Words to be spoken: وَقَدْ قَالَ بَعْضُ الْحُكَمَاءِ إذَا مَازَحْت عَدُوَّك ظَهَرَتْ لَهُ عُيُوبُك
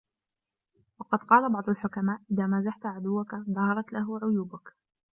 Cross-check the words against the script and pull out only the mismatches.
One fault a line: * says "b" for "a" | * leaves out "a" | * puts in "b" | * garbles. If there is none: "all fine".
all fine